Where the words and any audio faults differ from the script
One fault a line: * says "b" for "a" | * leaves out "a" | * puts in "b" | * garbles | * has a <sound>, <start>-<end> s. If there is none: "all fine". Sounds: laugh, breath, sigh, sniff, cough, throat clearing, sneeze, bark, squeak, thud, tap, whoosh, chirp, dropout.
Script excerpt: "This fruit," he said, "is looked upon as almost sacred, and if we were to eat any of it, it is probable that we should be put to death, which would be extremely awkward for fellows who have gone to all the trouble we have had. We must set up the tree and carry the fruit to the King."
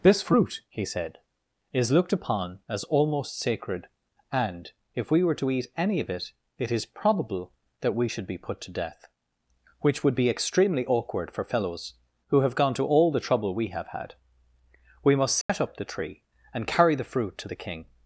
* has a dropout, 15.4-15.5 s